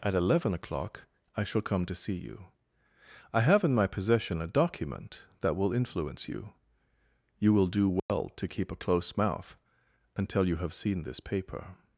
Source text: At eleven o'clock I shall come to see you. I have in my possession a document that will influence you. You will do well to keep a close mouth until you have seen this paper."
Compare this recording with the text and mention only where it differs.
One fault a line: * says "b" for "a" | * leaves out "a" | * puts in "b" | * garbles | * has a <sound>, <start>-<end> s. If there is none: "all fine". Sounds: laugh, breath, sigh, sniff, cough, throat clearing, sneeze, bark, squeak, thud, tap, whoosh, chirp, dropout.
* has a dropout, 8.0-8.1 s